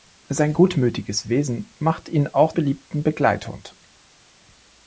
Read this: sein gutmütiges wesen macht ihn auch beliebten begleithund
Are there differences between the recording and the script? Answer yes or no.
no